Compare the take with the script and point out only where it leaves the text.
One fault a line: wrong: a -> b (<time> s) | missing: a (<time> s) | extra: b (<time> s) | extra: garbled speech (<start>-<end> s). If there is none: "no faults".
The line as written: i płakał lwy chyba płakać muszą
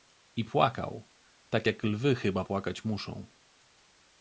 extra: tak jak (1.5 s)